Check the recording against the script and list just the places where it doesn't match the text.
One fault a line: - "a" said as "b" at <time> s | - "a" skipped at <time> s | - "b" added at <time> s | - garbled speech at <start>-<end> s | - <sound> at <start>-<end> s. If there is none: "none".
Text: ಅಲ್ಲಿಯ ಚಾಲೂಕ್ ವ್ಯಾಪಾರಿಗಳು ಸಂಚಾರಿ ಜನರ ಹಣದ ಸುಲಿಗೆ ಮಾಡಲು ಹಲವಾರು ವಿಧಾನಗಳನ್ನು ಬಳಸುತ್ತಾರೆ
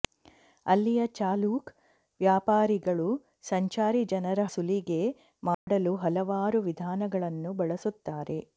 - "ಹಣದ" skipped at 4.5 s
- dropout at 5.5-5.7 s